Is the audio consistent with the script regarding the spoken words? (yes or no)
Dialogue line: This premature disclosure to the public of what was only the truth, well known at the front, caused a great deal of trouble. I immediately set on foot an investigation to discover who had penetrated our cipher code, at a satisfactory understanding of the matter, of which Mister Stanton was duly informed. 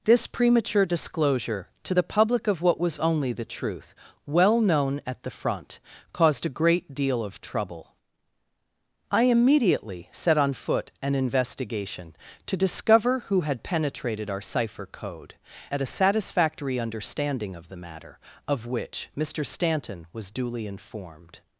yes